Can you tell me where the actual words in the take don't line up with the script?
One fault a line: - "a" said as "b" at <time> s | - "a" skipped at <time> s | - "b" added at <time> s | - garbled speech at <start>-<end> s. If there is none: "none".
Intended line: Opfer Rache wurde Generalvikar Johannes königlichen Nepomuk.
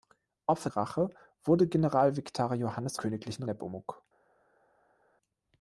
none